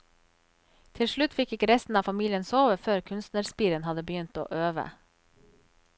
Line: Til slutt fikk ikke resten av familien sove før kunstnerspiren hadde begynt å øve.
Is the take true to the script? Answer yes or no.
yes